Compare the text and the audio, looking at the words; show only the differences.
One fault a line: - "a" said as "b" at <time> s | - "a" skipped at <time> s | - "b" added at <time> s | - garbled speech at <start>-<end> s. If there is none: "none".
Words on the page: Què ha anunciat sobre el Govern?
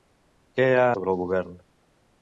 - "anunciat" skipped at 0.9 s